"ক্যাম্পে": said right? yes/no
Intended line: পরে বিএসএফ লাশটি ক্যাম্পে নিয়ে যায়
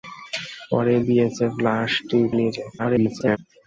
no